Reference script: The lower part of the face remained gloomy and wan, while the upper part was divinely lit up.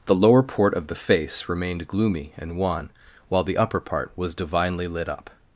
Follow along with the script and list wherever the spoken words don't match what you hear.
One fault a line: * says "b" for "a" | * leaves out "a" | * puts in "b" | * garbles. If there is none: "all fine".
* says "port" for "part"